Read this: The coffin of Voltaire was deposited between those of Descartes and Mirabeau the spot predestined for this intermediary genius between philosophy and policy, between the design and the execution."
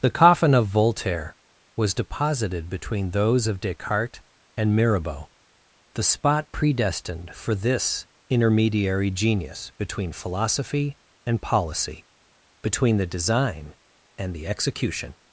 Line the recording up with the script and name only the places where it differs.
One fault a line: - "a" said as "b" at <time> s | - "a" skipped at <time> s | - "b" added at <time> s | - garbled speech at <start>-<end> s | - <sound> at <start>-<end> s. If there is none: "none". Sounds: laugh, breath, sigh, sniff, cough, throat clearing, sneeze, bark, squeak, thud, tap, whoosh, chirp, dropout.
none